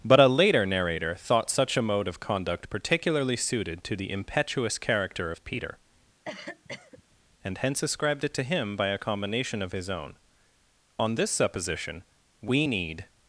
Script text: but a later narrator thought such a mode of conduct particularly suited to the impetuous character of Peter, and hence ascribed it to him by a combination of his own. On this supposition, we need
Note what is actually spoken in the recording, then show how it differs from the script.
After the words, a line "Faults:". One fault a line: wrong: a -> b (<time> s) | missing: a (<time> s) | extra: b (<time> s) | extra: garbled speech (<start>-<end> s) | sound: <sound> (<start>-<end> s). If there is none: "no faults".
but a later narrator thought such a mode of conduct particularly suited to the impetuous character of Peter, and hence ascribed it to him by a combination of his own. On this supposition, we need
Faults:
sound: cough (6.2-7.0 s)